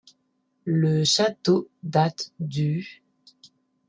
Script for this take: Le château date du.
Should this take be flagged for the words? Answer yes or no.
no